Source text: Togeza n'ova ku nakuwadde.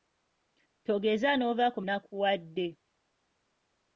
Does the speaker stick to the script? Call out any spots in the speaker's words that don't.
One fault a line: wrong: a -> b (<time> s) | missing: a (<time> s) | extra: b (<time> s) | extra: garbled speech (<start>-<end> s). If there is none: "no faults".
no faults